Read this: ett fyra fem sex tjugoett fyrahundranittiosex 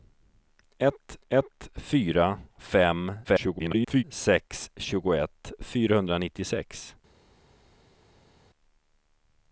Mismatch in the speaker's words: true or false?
true